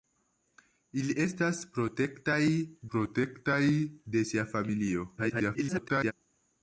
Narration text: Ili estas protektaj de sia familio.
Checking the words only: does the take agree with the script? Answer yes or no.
no